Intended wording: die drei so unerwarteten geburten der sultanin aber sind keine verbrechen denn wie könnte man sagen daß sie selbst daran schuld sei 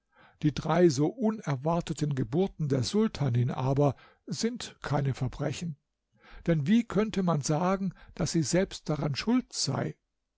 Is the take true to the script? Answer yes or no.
yes